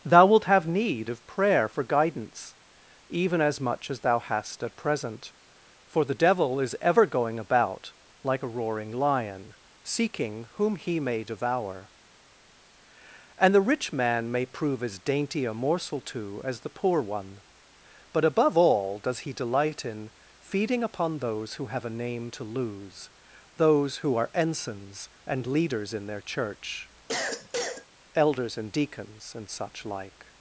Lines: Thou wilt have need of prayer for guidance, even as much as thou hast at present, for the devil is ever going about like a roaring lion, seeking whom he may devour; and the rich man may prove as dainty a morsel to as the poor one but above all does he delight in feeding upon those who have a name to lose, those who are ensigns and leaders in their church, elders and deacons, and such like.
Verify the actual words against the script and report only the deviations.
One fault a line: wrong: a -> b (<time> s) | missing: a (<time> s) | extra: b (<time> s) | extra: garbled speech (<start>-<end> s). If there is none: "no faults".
no faults